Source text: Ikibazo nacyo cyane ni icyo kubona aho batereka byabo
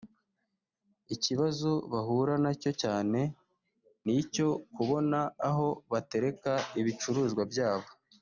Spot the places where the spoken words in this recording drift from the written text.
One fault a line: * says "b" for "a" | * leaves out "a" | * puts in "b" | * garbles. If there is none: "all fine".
* puts in "bahura"
* puts in "ibicuruzwa"